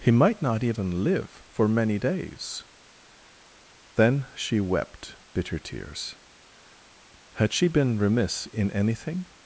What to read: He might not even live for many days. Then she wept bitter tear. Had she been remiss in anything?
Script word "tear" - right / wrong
wrong